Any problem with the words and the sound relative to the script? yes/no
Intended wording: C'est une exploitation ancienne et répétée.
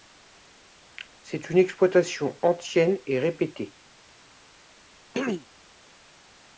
yes